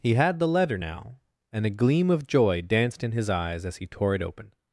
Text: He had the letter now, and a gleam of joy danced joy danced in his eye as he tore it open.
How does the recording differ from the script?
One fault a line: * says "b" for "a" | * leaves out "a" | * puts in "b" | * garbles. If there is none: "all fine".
* leaves out "joy danced"
* says "eyes" for "eye"